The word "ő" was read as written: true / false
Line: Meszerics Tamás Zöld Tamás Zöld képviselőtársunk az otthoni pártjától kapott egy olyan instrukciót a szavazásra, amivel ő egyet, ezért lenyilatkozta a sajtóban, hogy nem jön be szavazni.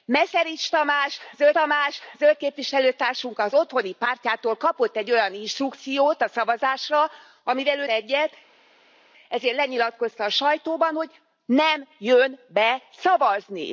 true